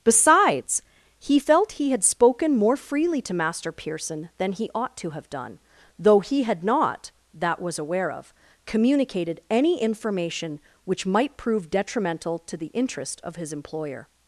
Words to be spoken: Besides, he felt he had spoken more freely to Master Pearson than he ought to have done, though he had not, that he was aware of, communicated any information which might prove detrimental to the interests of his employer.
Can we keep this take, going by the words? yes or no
no